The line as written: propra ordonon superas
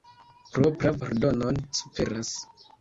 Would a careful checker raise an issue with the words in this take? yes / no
no